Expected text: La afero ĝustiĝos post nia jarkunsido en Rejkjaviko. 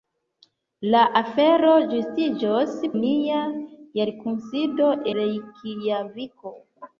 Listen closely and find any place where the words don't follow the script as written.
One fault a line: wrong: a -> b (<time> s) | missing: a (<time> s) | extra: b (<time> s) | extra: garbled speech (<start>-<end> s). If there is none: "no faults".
missing: post (2.7 s)
missing: en (4.9 s)